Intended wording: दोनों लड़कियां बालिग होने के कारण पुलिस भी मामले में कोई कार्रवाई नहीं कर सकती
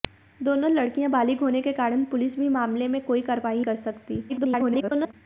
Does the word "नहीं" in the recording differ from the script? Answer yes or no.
yes